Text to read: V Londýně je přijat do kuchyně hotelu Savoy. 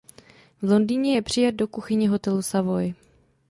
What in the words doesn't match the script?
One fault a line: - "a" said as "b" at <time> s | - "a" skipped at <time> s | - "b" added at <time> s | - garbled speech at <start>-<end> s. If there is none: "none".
none